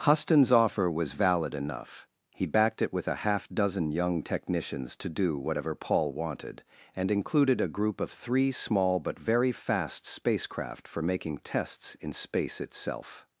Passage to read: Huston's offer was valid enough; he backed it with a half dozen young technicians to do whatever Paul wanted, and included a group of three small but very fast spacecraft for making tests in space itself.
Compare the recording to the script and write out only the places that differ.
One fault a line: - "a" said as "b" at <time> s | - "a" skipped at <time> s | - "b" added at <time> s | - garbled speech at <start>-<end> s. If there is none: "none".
none